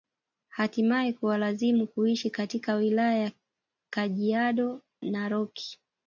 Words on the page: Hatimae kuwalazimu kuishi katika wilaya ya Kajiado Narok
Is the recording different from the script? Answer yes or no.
no